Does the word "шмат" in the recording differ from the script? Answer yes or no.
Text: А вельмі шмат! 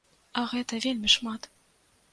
no